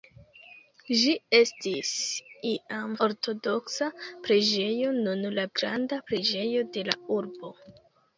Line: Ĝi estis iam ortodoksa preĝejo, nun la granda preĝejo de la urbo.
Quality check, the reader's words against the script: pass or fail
pass